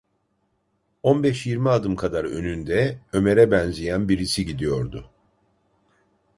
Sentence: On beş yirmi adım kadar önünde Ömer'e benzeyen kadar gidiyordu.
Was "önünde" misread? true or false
false